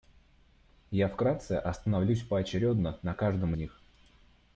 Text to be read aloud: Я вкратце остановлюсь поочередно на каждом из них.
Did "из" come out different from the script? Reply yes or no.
yes